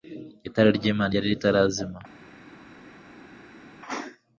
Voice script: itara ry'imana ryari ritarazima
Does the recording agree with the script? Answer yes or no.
yes